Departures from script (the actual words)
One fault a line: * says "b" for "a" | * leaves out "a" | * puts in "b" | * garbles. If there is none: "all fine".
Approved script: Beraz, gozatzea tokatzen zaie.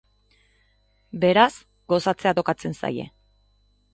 all fine